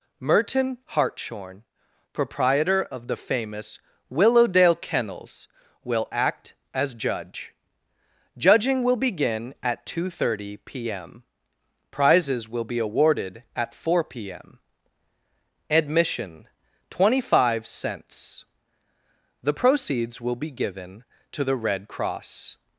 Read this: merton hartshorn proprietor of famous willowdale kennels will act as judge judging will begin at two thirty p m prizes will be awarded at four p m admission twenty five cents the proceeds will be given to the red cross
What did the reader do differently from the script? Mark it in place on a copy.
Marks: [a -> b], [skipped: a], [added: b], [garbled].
merton hartshorn proprietor of [added: the] famous willowdale kennels will act as judge judging will begin at two thirty p m prizes will be awarded at four p m admission twenty five cents the proceeds will be given to the red cross